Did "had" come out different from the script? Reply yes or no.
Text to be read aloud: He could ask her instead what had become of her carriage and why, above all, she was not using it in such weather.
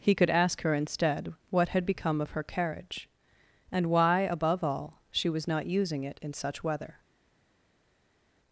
no